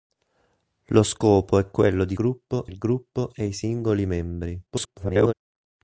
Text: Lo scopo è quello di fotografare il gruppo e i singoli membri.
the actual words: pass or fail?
fail